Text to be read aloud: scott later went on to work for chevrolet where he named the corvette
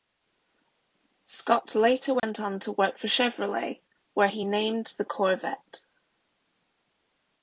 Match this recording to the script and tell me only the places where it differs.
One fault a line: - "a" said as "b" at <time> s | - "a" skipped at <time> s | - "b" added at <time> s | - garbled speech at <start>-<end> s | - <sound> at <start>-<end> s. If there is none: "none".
- dropout at 2.2-2.2 s